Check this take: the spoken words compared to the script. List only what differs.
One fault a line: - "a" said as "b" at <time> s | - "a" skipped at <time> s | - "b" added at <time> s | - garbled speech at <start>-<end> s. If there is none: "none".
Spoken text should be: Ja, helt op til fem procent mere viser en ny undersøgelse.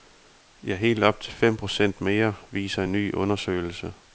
none